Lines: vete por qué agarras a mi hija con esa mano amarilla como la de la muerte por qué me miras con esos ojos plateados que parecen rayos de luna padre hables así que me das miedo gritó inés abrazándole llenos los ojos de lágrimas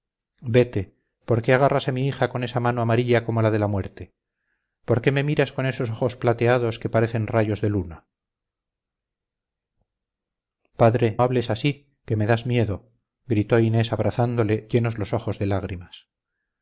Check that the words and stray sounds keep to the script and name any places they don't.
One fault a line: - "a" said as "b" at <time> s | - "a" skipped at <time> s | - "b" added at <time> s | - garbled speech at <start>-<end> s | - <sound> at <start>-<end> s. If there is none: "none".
none